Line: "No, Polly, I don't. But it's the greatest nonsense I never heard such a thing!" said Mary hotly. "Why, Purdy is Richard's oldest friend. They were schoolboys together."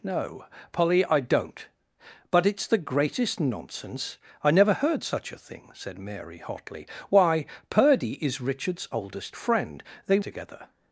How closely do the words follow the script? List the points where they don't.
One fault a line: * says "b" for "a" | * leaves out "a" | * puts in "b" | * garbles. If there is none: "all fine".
* leaves out "were schoolboys"